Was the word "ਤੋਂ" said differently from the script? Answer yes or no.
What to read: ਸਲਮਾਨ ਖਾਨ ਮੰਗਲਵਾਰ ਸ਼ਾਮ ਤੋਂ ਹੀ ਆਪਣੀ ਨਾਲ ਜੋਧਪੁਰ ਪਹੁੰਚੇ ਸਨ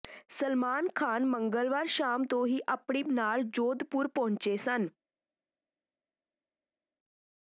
no